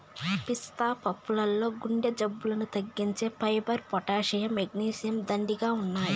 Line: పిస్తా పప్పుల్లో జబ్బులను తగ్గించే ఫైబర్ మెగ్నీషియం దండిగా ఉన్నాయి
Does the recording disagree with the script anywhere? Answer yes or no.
yes